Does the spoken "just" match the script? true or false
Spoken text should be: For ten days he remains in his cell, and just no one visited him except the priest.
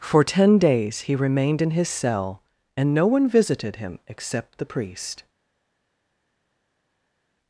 false